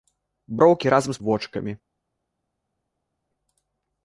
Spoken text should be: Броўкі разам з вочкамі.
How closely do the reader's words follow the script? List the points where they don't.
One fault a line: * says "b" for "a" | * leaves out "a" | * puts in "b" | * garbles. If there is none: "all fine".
all fine